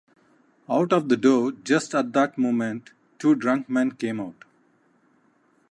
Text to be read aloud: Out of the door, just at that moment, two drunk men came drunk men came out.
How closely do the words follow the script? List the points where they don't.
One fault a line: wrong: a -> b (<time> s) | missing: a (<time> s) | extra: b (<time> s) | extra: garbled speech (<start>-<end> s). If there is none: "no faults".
missing: drunk men came (4.2 s)